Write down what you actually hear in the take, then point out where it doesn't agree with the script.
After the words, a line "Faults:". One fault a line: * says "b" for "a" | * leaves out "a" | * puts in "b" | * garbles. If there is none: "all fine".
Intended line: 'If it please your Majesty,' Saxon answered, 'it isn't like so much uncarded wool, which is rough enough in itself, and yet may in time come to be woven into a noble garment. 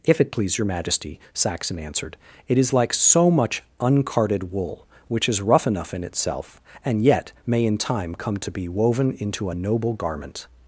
'If it please your Majesty,' Saxon answered, 'it is like so much uncarded wool, which is rough enough in itself, and yet may in time come to be woven into a noble garment.
Faults:
* says "is" for "isn't"